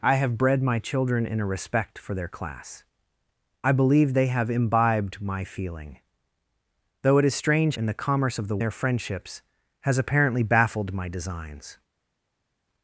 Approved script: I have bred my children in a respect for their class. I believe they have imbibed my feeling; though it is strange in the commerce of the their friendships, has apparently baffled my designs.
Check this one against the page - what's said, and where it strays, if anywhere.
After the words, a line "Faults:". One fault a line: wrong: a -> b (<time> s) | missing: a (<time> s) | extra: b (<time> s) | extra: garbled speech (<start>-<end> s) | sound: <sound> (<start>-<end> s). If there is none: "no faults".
I have bred my children in a respect for their class. I believe they have imbibed my feeling; though it is strange in the commerce of the their friendships, has apparently baffled my designs.
Faults:
no faults